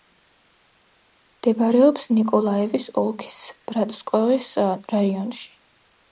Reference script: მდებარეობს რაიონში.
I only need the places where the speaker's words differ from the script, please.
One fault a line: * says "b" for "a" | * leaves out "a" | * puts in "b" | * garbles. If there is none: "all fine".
* puts in "ნიკოლაევის ოლქის ბრატსკოეს"